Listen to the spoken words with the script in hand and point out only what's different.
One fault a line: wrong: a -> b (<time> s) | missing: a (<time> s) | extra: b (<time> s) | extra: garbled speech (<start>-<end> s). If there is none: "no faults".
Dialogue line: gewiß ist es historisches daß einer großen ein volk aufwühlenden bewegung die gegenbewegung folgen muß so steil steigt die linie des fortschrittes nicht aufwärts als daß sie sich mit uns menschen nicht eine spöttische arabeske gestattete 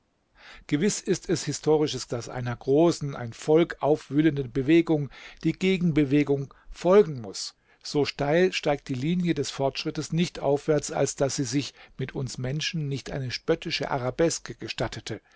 no faults